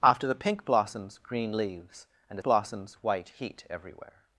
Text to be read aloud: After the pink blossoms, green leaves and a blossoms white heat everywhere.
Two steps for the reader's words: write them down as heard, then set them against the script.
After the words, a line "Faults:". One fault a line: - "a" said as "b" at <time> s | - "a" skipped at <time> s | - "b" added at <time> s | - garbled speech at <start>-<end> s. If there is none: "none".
After the pink blossoms, green leaves and a blossoms white heat everywhere.
Faults:
none